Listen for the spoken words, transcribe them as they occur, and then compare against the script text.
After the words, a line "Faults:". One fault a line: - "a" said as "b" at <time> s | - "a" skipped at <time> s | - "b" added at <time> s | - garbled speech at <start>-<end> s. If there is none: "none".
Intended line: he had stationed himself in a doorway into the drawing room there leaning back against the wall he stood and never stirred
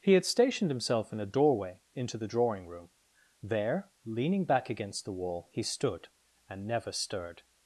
he had stationed himself in a doorway into the drawing room there leaning back against the wall he stood and never stirred
Faults:
none